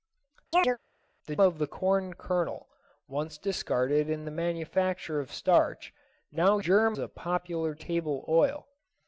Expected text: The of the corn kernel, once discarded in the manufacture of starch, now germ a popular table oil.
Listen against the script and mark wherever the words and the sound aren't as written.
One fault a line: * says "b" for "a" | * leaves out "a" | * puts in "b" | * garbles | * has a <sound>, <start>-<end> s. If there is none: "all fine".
* has a chirp, 0.5-0.8 s